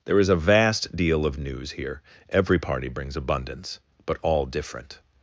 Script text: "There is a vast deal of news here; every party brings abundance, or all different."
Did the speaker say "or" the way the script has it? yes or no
no